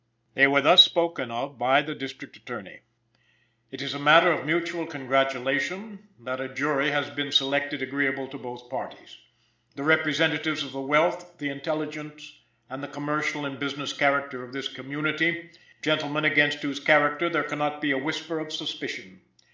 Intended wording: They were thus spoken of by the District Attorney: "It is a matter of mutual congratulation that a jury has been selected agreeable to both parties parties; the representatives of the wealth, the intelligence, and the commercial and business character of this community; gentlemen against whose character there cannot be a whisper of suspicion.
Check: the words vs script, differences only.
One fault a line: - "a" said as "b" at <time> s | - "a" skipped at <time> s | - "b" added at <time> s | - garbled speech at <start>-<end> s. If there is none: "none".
- "parties" skipped at 9.2 s